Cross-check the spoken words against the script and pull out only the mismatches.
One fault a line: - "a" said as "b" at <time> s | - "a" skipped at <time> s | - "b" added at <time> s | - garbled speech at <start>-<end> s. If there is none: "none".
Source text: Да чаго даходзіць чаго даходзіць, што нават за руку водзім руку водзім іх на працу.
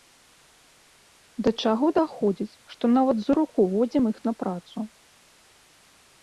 - "чаго даходзіць" skipped at 2.6 s
- "руку водзім" skipped at 4.0 s